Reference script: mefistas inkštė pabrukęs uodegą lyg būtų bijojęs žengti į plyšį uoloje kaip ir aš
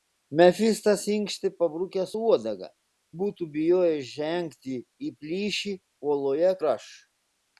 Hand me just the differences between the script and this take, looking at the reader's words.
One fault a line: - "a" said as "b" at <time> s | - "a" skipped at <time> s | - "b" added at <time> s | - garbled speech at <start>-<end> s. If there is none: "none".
- "lyg" skipped at 2.7 s
- "kaip" skipped at 6.5 s